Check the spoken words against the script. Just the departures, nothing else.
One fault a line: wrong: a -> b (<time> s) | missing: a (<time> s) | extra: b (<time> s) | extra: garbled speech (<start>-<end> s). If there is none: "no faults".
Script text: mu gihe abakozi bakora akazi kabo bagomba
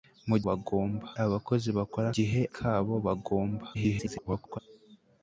wrong: gihe -> bagomba (0.5 s)
wrong: akazi -> gihe (2.1 s)
extra: garbled speech (3.7-4.6 s)